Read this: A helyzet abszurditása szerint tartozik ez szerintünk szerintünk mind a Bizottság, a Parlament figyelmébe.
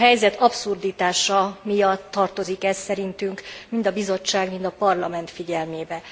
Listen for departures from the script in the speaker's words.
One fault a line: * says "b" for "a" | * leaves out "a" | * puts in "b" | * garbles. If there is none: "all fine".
* says "miatt" for "szerint"
* leaves out "szerintünk"
* puts in "mind"